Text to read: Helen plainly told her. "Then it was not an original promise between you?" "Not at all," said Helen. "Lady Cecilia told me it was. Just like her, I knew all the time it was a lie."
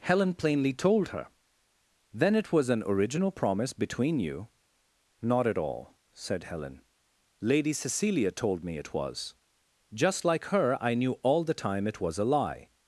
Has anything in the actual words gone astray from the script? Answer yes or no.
yes